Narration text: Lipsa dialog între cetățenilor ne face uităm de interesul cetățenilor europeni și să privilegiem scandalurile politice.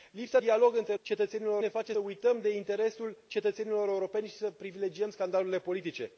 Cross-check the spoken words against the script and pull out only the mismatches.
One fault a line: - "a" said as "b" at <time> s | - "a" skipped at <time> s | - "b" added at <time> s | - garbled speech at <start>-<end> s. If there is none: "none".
none